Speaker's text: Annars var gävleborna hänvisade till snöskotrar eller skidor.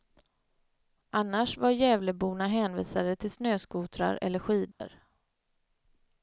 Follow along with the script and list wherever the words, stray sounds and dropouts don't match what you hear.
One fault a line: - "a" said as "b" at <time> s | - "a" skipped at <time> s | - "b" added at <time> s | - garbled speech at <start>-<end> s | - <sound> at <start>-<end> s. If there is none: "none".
- dropout at 4.7-4.8 s